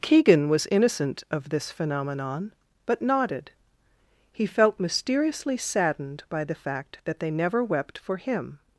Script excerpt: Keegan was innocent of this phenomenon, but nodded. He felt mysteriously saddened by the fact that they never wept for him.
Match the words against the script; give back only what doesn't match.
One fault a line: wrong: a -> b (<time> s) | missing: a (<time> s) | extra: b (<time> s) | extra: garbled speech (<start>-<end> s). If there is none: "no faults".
no faults